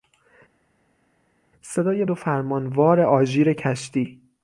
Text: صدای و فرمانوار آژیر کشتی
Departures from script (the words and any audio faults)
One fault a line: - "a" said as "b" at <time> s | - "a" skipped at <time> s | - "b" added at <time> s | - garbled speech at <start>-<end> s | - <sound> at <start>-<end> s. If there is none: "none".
none